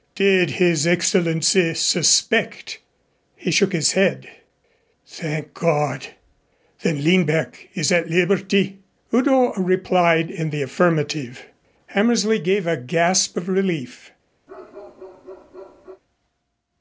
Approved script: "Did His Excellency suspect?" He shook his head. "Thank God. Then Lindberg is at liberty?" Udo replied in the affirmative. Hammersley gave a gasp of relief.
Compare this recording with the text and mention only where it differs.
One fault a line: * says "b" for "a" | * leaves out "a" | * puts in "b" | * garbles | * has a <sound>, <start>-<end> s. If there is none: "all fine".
* has a bark, 14.5-16.0 s